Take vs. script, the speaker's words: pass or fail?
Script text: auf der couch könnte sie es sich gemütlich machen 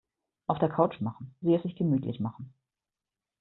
fail